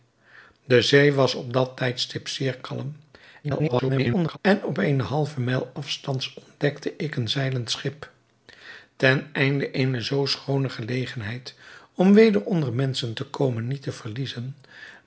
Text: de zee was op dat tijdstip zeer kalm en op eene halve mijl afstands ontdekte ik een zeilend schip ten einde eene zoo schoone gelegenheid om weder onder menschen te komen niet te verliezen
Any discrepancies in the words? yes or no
yes